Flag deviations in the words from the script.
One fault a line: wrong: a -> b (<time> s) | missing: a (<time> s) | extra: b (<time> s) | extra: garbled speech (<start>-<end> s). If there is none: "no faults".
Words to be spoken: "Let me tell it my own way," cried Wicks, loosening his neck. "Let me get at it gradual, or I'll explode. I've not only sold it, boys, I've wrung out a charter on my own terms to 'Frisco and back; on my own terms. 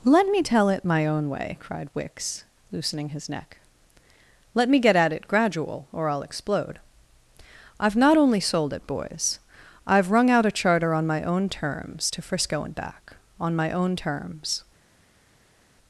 no faults